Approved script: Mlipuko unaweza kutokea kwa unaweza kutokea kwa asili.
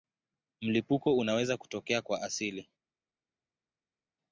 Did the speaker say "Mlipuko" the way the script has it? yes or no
yes